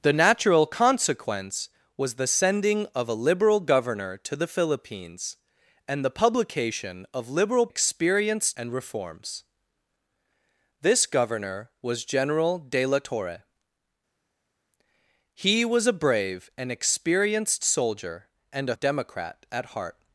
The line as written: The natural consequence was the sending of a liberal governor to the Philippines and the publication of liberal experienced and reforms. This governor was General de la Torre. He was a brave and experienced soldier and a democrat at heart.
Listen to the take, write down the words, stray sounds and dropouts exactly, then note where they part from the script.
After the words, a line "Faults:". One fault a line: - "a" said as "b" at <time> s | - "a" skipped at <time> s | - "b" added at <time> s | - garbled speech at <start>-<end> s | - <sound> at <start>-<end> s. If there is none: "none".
The natural consequence was the sending of a liberal governor to the Philippines and the publication of liberal experienced and reforms. This governor was General de la Torre. He was a brave and experienced soldier and a democrat at heart.
Faults:
none